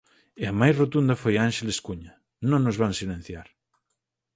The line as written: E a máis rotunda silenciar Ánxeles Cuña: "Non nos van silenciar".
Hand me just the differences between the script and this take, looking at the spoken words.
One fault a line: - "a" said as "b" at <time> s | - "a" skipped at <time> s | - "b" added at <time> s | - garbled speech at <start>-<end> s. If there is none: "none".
- "silenciar" said as "foi" at 1.2 s